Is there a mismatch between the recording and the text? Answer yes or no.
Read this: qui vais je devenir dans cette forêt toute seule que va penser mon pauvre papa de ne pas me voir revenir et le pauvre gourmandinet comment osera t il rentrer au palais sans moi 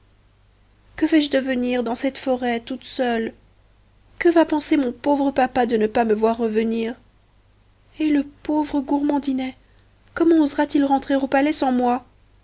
yes